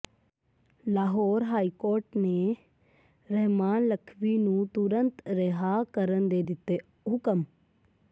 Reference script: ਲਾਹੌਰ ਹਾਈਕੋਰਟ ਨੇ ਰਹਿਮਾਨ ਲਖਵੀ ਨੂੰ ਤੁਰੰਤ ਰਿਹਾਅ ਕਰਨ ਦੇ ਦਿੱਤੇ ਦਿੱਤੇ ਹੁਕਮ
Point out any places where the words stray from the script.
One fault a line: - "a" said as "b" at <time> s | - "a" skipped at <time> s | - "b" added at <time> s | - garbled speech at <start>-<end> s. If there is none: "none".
- "ਦਿੱਤੇ" skipped at 6.8 s